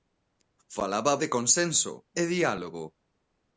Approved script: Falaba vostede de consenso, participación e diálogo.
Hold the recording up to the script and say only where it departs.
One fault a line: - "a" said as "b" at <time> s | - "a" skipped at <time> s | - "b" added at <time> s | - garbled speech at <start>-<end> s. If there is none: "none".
- "vostede" skipped at 1.2 s
- "participación" skipped at 1.9 s